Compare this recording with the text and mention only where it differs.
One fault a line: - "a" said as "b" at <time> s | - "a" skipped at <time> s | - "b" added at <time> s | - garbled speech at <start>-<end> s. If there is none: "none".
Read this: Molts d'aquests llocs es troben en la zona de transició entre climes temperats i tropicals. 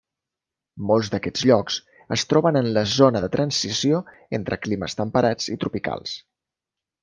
none